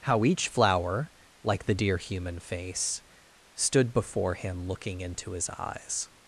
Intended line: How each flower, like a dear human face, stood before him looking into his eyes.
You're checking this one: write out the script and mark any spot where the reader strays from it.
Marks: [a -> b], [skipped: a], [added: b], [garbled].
How each flower, like [a -> the] dear human face, stood before him looking into his eyes.